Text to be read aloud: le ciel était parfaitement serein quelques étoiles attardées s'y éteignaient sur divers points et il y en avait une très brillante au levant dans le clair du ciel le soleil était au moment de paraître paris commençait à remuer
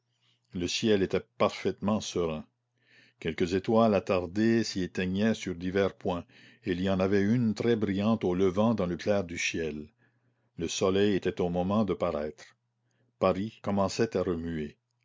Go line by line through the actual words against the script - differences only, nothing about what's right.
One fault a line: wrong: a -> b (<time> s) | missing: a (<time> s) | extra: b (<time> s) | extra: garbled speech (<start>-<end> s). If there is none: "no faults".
no faults